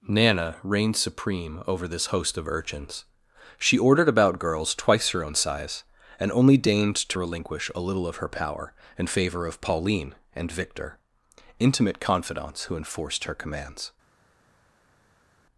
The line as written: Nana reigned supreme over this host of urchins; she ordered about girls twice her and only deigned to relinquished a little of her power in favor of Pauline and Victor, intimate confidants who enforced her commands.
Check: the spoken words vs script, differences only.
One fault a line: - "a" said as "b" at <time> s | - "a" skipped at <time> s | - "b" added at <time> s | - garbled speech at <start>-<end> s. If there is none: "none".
- "own size" added at 5.2 s
- "relinquished" said as "relinquish" at 7.2 s